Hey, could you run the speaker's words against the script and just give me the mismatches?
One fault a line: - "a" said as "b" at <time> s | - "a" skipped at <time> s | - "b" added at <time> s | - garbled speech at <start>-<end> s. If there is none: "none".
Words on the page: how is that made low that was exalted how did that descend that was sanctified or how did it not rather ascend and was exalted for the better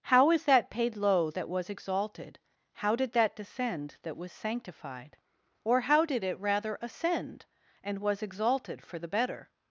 - "made" said as "paid" at 0.7 s
- "not" skipped at 6.4 s